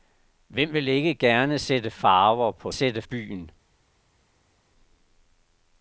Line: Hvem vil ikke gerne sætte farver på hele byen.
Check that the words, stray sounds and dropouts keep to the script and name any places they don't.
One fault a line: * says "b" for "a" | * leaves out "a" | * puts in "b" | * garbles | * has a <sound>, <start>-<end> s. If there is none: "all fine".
* says "sætte" for "hele"